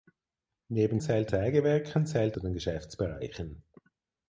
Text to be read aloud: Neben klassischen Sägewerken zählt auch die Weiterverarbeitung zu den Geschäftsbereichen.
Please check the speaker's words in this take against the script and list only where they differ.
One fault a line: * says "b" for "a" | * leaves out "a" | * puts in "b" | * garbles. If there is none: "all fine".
* says "zählt" for "klassischen"
* leaves out "auch die Weiterverarbeitung"